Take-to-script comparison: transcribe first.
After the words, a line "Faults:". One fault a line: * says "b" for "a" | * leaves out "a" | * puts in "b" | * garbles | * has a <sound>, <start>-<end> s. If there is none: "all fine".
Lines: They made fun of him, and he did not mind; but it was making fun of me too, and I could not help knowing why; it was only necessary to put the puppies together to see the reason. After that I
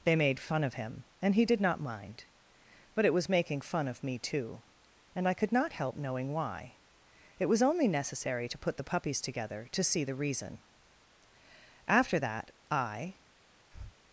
They made fun of him, and he did not mind; but it was making fun of me too, and I could not help knowing why; it was only necessary to put the puppies together to see the reason. After that I
Faults:
* has a breath, 13.7-14.0 s